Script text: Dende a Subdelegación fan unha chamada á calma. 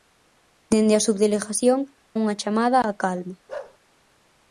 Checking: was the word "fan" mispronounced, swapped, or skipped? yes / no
yes